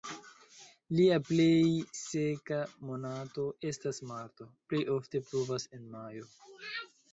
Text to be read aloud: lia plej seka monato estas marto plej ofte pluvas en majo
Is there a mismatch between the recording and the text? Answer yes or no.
no